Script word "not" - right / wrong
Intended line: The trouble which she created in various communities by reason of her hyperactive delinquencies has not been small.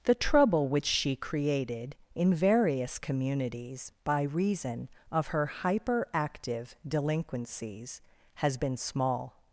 wrong